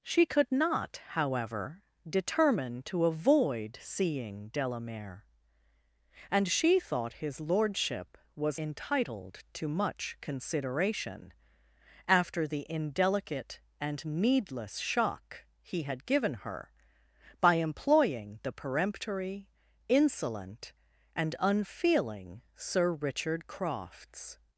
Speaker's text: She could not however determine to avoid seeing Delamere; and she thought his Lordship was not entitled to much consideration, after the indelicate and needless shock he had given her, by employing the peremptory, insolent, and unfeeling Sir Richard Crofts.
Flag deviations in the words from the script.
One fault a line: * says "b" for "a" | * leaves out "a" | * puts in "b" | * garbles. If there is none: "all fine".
* leaves out "not"